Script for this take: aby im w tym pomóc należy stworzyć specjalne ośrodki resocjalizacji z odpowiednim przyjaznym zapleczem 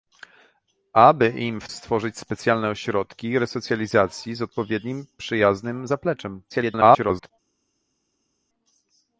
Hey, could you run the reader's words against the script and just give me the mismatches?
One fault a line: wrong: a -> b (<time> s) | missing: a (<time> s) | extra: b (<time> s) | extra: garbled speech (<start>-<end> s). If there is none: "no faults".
missing: tym pomóc należy (1.7 s)
extra: garbled speech (6.5-7.3 s)